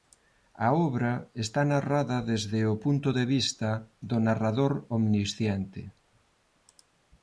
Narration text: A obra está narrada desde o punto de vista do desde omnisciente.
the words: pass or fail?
fail